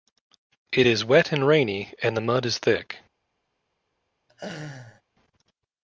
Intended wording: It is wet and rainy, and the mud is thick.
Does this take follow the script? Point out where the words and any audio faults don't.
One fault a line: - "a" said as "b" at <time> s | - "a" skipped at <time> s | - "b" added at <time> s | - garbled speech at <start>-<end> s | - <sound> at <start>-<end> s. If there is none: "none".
- laugh at 4.3-5.0 s